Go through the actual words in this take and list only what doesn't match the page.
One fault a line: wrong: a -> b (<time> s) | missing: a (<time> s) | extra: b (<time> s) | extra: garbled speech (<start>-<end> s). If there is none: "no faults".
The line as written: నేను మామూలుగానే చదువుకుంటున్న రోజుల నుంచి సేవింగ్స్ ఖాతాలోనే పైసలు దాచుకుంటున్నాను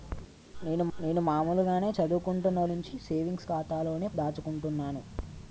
extra: నేను (1.0 s)
missing: రోజుల (2.6 s)
missing: పైసలు (4.1 s)